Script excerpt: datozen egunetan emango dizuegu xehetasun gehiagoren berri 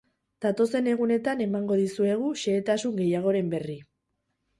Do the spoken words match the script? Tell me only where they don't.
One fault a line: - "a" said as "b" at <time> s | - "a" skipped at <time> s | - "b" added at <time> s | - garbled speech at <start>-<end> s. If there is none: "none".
none